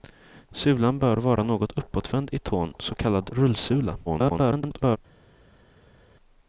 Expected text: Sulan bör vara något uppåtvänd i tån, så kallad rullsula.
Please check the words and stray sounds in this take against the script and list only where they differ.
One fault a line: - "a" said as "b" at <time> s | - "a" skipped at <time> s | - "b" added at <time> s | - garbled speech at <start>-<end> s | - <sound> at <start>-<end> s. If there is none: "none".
- garbled speech at 4.1-5.0 s